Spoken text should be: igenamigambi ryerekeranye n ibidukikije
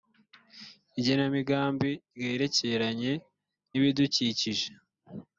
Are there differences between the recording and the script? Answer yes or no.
no